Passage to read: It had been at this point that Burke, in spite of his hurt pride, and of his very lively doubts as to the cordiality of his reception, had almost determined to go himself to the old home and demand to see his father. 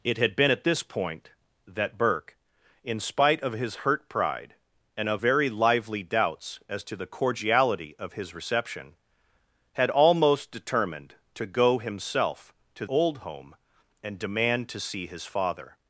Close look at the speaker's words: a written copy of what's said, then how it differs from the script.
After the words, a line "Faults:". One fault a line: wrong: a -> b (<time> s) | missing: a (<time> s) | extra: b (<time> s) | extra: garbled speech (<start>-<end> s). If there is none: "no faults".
It had been at this point that Burke, in spite of his hurt pride, and of very lively doubts as to the cordiality of his reception, had almost determined to go himself to old home and demand to see his father.
Faults:
missing: his (5.2 s)
missing: the (12.9 s)